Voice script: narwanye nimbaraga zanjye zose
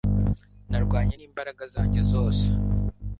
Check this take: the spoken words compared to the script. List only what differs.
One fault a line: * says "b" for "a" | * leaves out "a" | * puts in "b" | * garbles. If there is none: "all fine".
all fine